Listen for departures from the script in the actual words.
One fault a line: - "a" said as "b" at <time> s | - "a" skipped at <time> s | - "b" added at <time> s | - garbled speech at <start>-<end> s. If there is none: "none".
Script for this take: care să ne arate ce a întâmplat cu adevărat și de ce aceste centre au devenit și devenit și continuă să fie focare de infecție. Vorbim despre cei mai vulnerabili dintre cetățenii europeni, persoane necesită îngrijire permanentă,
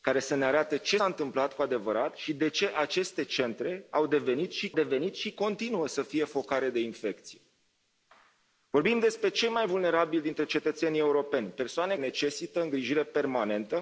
none